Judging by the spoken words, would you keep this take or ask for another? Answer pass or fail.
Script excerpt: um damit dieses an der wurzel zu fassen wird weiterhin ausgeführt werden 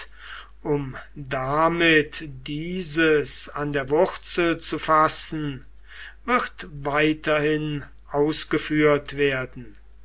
pass